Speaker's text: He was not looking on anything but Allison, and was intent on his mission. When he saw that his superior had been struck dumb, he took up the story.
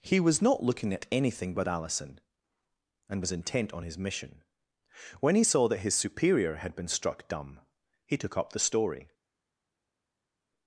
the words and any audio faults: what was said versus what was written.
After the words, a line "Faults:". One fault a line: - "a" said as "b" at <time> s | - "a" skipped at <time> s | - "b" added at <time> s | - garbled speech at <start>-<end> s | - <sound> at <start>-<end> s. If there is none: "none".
He was not looking at anything but Allison, and was intent on his mission. When he saw that his superior had been struck dumb, he took up the story.
Faults:
- "on" said as "at" at 0.9 s